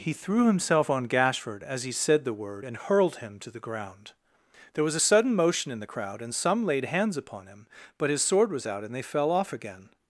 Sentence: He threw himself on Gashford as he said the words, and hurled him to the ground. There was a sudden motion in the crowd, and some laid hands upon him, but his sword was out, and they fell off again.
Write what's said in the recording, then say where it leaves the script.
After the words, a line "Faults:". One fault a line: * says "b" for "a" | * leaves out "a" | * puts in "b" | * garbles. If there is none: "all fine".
He threw himself on Gashford as he said the word, and hurled him to the ground. There was a sudden motion in the crowd, and some laid hands upon him, but his sword was out, and they fell off again.
Faults:
* says "word" for "words"